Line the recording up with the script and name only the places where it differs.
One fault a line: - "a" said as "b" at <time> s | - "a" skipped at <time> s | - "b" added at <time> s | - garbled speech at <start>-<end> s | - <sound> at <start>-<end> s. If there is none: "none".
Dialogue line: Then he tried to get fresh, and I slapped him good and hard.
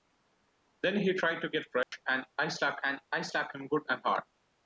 - dropout at 1.8-1.9 s
- "and I slapped" added at 2.8 s